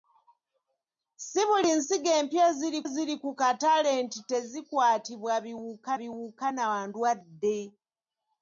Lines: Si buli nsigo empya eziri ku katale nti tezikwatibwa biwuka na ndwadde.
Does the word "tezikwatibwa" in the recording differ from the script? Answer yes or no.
no